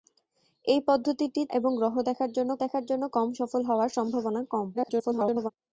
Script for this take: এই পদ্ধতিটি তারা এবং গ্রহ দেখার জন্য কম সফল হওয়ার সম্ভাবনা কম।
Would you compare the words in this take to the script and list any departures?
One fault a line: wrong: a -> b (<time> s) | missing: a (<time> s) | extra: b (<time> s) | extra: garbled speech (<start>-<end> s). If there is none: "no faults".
missing: তারা (1.4 s)
extra: দেখার জন্য (2.6 s)
extra: garbled speech (4.7-5.5 s)